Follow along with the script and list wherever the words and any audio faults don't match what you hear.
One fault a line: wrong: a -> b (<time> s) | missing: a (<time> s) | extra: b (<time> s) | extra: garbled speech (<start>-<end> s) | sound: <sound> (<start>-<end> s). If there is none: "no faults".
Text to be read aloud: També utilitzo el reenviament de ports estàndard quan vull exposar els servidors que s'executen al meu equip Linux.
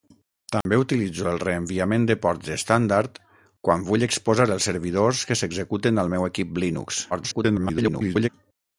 sound: dropout (0.6-0.7 s)
extra: garbled speech (7.1-8.3 s)